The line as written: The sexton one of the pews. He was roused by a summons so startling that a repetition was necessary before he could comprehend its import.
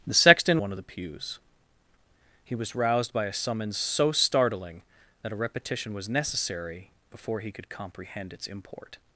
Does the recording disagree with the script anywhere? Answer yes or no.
no